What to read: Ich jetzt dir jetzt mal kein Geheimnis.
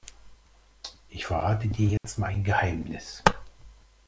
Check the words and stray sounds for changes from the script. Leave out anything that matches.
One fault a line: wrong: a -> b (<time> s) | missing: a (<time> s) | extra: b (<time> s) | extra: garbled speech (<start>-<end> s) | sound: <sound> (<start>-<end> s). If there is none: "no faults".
wrong: jetzt -> verrate (1.2 s)
sound: dropout (2.0-2.0 s)
wrong: kein -> ein (2.2 s)